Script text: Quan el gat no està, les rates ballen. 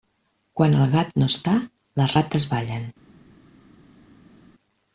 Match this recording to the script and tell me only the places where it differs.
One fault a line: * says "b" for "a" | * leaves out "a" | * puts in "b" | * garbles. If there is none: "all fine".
all fine